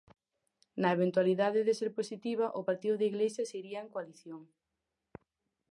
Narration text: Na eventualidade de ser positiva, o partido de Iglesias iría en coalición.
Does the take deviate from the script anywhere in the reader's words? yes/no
no